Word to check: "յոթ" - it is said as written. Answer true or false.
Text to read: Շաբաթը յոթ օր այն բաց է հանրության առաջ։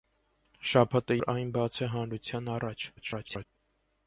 false